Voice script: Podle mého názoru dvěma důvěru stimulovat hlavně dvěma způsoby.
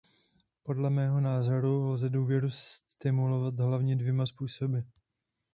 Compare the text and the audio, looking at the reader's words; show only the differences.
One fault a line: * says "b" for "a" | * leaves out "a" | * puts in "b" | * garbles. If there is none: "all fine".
* says "lze" for "dvěma"